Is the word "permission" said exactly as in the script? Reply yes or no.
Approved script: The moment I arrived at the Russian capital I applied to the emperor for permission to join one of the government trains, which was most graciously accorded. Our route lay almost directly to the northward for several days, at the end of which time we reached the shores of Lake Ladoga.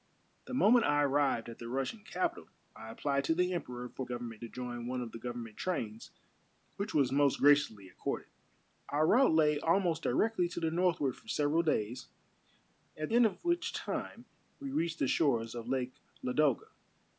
no